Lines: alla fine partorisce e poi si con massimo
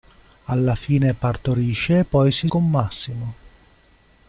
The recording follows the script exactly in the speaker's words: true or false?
true